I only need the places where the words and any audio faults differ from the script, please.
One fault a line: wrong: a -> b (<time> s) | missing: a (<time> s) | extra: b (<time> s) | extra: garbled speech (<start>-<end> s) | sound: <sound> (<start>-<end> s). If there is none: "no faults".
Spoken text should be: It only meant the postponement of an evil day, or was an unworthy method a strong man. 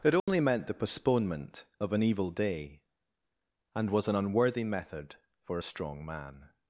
sound: dropout (0.2-0.3 s)
wrong: or -> and (3.8 s)
extra: for (5.4 s)